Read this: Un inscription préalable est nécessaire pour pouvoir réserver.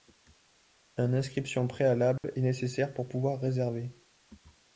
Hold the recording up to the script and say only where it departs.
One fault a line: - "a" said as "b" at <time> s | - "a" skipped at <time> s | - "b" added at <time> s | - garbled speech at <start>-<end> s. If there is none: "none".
none